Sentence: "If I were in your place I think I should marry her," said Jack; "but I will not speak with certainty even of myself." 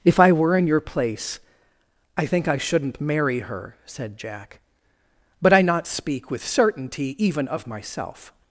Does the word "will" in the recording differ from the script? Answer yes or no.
yes